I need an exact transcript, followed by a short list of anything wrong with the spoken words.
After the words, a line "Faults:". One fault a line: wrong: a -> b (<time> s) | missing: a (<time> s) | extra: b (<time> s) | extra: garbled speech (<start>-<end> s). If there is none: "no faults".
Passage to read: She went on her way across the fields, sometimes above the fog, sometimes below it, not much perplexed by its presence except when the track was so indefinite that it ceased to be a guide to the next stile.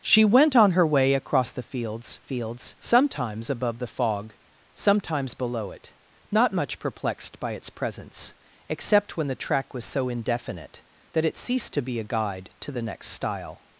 She went on her way across the fields fields, sometimes above the fog, sometimes below it, not much perplexed by its presence except when the track was so indefinite that it ceased to be a guide to the next stile.
Faults:
extra: fields (2.2 s)